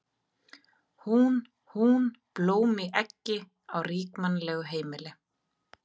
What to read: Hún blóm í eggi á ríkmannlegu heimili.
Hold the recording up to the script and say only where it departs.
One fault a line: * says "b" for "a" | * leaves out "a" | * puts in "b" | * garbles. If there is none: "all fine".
* puts in "hún"